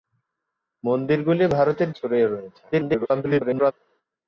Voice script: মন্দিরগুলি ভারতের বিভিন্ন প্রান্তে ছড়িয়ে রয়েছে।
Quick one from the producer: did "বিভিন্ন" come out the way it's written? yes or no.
no